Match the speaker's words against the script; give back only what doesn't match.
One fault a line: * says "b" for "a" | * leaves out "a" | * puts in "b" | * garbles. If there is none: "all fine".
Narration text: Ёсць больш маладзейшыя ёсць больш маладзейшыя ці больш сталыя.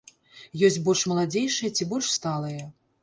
* leaves out "ёсць больш маладзейшыя"